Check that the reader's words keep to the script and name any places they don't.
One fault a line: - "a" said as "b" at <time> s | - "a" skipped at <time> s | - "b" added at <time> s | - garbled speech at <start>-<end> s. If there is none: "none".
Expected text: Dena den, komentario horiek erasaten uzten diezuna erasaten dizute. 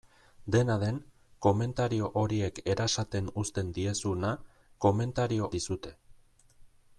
- "erasaten" said as "komentario" at 4.8 s